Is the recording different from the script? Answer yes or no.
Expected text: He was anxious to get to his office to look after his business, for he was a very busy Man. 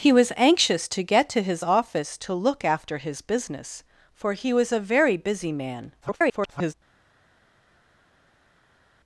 yes